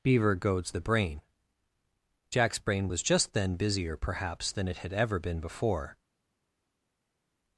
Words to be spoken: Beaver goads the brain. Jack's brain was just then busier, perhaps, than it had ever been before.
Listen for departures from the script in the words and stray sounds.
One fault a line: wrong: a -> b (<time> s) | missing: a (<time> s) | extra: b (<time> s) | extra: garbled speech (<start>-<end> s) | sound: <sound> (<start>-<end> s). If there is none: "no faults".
no faults